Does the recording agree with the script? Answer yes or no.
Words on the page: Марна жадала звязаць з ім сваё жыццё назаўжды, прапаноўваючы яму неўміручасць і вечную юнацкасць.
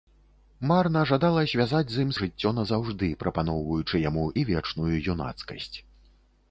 no